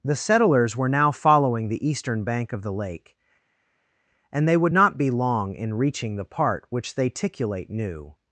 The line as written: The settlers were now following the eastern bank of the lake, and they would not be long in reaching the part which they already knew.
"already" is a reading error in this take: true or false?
true